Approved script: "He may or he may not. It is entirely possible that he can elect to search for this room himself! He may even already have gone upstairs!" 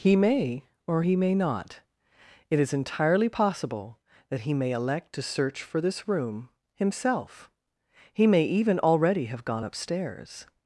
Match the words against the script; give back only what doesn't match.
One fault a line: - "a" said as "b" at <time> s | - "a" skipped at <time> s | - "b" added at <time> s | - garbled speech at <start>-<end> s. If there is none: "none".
- "can" said as "may" at 4.5 s